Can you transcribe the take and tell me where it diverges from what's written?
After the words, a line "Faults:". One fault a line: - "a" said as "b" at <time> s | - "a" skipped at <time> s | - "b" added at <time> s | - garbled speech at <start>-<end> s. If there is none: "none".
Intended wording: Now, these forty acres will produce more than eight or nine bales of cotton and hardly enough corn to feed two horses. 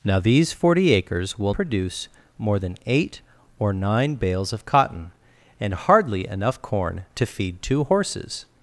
Now, these forty acres will produce more than eight or nine bales of cotton and hardly enough corn to feed two horses.
Faults:
none